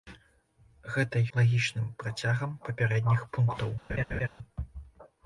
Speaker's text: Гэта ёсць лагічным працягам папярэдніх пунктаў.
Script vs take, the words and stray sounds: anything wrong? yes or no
yes